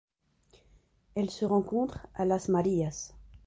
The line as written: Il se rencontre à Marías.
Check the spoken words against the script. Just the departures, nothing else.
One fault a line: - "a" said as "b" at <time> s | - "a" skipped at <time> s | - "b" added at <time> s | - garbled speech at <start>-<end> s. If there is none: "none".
- "Il" said as "Elle" at 1.1 s
- "Las" added at 2.2 s